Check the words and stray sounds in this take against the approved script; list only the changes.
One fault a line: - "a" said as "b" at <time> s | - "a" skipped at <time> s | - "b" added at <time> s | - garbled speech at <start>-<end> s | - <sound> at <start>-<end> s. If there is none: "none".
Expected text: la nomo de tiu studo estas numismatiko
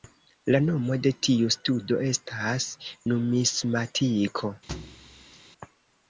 - thud at 4.7-5.4 s